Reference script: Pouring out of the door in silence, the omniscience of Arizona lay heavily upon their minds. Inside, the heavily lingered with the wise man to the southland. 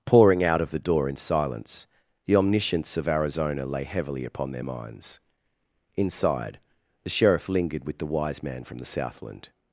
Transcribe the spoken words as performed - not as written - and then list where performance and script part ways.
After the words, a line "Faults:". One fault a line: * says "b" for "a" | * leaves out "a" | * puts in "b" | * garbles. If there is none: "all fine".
Pouring out of the door in silence, the omniscience of Arizona lay heavily upon their minds. Inside, the sheriff lingered with the wise man from the southland.
Faults:
* says "sheriff" for "heavily"
* says "from" for "to"